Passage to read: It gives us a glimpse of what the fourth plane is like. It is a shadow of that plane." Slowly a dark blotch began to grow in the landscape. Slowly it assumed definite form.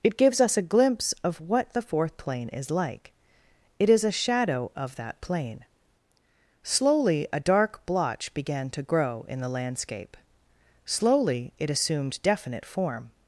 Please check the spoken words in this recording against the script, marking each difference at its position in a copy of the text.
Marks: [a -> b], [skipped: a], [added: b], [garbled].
It gives us a glimpse of what the fourth plane is like. It is a shadow of that plane." Slowly a dark blotch began to grow in the landscape. Slowly it assumed definite form.